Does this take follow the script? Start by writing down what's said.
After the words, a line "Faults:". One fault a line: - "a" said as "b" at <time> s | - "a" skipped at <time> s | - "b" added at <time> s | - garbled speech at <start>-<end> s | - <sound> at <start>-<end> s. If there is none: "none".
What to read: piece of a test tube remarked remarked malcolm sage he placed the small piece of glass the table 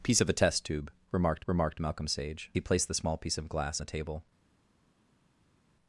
piece of a test tube remarked remarked malcolm sage he placed the small piece of glass the table
Faults:
none